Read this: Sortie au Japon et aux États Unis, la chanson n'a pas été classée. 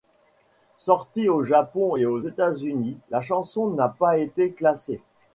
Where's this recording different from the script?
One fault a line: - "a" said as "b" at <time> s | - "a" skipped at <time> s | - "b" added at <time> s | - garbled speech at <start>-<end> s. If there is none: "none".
none